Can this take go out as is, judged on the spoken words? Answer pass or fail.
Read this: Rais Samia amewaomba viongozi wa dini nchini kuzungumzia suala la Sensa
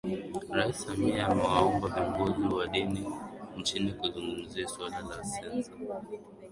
pass